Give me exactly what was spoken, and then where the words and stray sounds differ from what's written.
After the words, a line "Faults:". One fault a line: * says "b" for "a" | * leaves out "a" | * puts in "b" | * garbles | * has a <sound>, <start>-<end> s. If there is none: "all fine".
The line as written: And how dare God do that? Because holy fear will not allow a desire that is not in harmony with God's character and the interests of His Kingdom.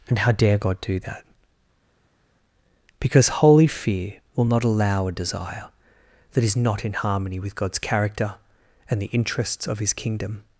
And how dare God do that? Because holy fear will not allow a desire that is not in harmony with God's character and the interests of His Kingdom.
Faults:
all fine